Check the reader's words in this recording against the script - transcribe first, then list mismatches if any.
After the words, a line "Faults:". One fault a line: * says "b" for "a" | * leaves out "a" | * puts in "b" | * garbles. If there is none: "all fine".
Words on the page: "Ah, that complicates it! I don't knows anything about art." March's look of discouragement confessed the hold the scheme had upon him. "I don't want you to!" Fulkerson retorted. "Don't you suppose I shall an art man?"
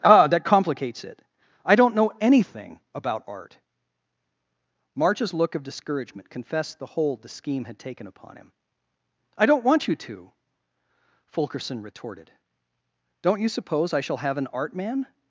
"Ah, that complicates it! I don't know anything about art." March's look of discouragement confessed the hold the scheme had taken upon him. "I don't want you to!" Fulkerson retorted. "Don't you suppose I shall have an art man?"
Faults:
* says "know" for "knows"
* puts in "taken"
* puts in "have"